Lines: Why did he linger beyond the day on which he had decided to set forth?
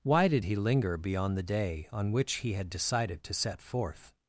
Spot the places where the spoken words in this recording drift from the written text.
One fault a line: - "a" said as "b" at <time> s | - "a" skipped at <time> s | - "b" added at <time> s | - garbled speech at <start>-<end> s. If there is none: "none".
none